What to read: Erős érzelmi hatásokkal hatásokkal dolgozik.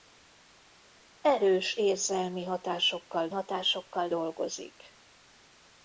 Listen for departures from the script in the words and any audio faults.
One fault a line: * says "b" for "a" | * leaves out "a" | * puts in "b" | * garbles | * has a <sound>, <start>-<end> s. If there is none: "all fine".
all fine